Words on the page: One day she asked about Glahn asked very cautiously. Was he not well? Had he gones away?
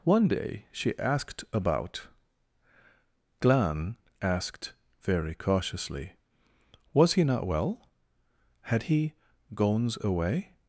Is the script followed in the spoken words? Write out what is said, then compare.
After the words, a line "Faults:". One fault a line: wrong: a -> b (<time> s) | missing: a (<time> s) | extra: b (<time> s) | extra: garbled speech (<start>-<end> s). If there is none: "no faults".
One day she asked about Glahn asked very cautiously. Was he not well? Had he gones away?
Faults:
no faults